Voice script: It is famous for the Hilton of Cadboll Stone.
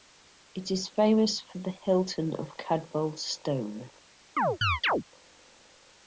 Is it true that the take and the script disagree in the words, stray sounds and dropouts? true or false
true